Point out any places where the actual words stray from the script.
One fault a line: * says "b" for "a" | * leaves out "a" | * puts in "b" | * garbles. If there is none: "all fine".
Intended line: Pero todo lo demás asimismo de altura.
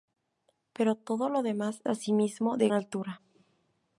all fine